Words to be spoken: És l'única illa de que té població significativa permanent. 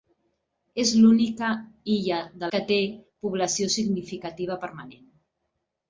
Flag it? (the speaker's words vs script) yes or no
no